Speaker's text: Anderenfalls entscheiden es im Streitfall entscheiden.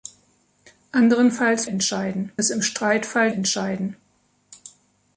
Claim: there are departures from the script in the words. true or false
false